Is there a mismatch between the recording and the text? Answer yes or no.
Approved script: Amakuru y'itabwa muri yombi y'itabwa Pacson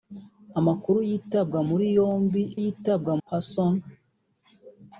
no